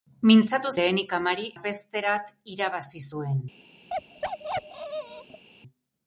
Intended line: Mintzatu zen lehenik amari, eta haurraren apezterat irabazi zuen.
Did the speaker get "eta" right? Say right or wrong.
wrong